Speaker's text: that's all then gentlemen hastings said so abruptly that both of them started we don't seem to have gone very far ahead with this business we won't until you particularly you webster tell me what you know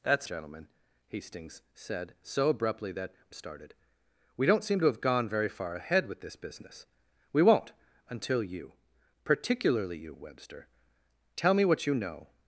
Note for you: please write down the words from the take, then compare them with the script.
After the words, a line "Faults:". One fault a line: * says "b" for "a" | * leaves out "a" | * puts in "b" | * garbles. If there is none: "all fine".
that's gentlemen hastings said so abruptly that started we don't seem to have gone very far ahead with this business we won't until you particularly you webster tell me what you know
Faults:
* leaves out "all then"
* leaves out "both of them"